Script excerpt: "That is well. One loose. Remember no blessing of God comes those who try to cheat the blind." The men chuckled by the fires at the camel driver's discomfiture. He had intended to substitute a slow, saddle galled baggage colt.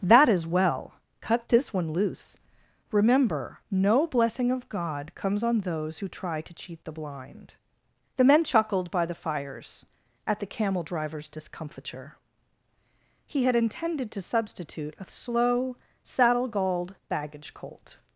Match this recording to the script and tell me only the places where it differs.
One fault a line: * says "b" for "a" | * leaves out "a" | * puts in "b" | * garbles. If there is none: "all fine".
* puts in "Cut this"
* puts in "on"